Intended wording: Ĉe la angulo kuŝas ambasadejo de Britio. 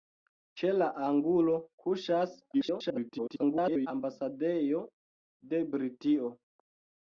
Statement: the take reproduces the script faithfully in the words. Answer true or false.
false